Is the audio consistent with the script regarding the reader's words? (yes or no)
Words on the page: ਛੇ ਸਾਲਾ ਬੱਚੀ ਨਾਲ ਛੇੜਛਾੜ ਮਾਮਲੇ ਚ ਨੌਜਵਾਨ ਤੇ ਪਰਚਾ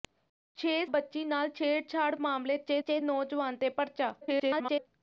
no